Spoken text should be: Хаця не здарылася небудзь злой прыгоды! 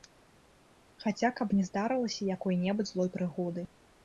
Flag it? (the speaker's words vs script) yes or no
yes